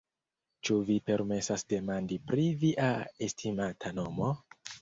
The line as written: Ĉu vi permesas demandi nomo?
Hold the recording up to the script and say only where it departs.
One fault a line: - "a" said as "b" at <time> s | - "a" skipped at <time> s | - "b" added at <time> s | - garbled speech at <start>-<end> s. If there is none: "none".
- "pri via estimata" added at 2.3 s